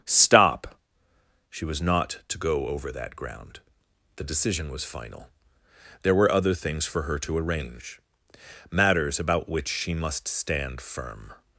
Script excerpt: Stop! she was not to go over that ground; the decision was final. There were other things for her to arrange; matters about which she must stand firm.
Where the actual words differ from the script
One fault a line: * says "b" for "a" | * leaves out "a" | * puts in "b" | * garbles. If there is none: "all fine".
all fine